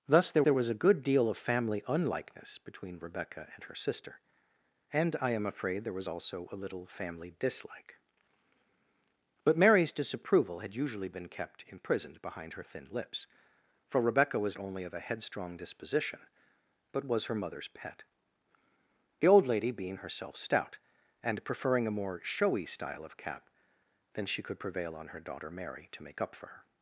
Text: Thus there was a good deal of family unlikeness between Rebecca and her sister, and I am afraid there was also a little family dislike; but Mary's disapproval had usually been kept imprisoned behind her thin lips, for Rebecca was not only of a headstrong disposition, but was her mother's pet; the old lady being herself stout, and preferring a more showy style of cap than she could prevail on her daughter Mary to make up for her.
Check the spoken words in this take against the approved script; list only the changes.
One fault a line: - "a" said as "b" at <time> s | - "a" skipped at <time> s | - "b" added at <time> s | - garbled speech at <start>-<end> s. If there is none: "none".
- "there" added at 0.4 s
- "not" skipped at 14.6 s